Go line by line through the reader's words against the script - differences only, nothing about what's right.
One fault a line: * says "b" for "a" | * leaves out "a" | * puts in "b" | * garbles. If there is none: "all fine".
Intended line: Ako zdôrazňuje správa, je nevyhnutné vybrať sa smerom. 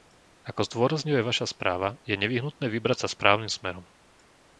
* puts in "vaša"
* puts in "správnym"